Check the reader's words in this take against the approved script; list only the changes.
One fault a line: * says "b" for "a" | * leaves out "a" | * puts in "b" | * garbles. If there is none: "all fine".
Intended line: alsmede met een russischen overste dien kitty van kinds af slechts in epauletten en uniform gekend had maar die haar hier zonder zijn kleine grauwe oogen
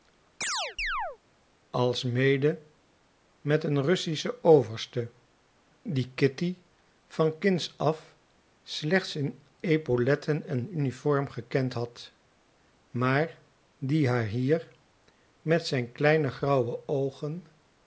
* says "met" for "zonder"